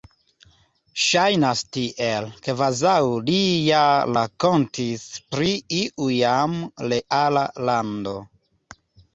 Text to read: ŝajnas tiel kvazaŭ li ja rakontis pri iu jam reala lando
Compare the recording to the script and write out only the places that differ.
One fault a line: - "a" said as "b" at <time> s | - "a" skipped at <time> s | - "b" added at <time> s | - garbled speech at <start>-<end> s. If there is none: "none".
none